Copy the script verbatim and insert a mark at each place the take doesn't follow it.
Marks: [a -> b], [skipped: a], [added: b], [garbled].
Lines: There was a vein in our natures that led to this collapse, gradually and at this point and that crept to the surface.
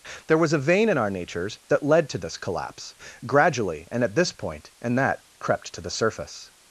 There was a vein in our natures that led to this collapse, gradually and at this point and that crept to the surface.